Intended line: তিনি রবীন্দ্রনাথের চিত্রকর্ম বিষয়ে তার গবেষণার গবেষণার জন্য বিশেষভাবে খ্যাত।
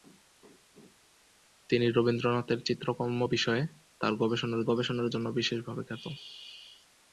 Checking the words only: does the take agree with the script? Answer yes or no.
yes